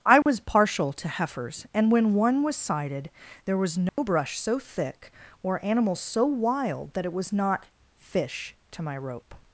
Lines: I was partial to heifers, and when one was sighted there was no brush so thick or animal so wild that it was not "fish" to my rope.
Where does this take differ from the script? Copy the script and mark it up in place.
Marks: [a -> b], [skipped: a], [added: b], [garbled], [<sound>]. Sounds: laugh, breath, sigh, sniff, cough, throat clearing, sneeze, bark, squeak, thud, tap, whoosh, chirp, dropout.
I was [dropout] partial to heifers, and when one was sighted there was no [dropout] brush so thick or animal so wild that it was not "fish" to my rope.